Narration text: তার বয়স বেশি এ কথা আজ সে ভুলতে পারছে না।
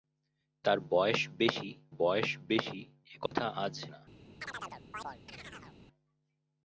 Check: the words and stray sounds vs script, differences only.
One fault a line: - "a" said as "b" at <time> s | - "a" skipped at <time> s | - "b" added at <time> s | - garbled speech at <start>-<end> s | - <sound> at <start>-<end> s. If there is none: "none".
- "বয়স বেশি" added at 2.0 s
- dropout at 3.3-3.3 s
- "সে ভুলতে পারছে" skipped at 3.7 s
- chirp at 4.4-5.8 s